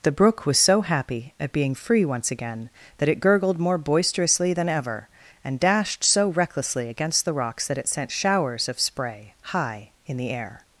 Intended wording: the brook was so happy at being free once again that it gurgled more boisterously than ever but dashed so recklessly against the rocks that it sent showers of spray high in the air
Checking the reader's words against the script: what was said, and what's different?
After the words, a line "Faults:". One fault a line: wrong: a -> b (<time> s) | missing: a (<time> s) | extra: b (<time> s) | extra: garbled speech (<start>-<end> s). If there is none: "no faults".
the brook was so happy at being free once again that it gurgled more boisterously than ever and dashed so recklessly against the rocks that it sent showers of spray high in the air
Faults:
wrong: but -> and (5.4 s)